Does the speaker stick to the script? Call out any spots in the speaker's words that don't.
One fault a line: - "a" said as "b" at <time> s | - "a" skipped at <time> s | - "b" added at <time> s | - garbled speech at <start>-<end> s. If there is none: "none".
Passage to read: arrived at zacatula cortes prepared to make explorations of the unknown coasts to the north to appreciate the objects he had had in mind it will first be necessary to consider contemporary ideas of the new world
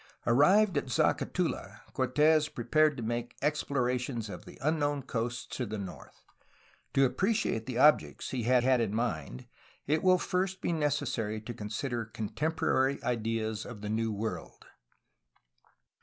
none